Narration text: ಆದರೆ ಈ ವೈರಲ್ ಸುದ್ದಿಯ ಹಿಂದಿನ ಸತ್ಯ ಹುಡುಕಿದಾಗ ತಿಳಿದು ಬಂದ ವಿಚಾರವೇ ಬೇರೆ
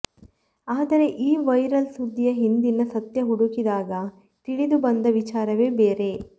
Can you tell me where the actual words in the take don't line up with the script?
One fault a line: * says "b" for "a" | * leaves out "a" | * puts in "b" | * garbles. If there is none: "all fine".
all fine